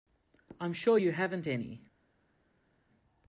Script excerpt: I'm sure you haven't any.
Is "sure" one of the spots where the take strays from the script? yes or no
no